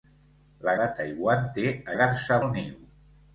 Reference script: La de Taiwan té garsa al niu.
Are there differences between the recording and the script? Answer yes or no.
no